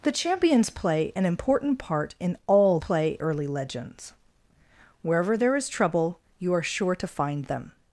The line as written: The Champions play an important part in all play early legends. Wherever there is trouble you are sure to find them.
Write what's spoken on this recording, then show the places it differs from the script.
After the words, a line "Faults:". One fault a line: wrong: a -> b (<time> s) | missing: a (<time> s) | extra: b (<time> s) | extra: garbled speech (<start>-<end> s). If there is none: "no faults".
The Champions play an important part in all play early legends. Wherever there is trouble you are sure to find them.
Faults:
no faults